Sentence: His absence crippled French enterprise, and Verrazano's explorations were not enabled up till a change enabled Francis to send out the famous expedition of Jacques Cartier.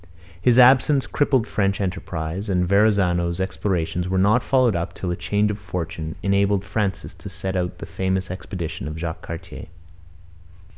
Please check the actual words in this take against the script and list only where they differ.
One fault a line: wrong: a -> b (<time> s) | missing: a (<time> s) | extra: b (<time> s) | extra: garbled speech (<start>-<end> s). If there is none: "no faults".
wrong: enabled -> followed (4.4 s)
extra: of fortune (5.5 s)